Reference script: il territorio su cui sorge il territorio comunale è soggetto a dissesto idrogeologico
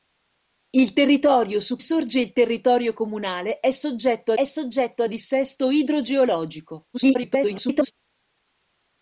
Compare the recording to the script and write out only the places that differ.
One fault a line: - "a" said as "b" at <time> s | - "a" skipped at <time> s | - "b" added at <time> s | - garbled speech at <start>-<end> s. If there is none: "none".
- "cui" skipped at 1.8 s
- "è soggetto" added at 4.3 s
- garbled speech at 6.9-7.9 s